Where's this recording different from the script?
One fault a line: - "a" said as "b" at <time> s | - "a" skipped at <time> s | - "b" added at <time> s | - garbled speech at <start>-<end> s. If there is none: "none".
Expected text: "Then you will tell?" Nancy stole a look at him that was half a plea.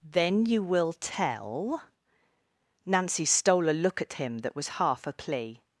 none